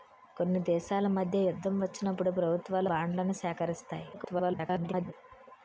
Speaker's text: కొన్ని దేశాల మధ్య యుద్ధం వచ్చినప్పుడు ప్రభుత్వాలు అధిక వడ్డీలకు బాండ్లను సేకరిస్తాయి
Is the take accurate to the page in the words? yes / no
no